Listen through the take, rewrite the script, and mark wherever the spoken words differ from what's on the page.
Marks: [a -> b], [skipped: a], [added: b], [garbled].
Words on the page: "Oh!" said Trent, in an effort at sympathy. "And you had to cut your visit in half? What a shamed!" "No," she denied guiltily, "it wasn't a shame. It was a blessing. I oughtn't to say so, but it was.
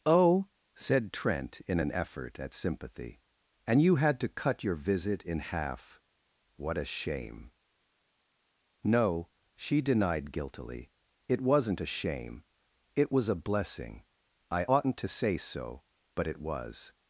"Oh!" said Trent, in an effort at sympathy. "And you had to cut your visit in half? What a [shamed!" -> shame] "No," she denied guiltily, "it wasn't a shame. It was a blessing. I oughtn't to say so, but it was.